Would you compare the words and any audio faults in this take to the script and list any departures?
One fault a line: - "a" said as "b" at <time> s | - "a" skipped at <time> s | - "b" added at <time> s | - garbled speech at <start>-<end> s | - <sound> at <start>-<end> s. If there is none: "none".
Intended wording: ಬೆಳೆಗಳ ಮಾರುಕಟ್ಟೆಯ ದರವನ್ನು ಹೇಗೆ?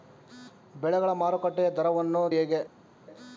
none